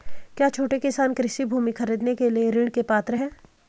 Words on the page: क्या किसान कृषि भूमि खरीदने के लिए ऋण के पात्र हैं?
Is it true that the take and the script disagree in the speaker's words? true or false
true